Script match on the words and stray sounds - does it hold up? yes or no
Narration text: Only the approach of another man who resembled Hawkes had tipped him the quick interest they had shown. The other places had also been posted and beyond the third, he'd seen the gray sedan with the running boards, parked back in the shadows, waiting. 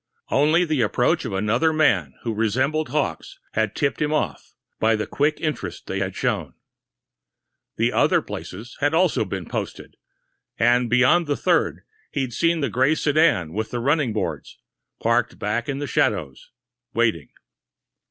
no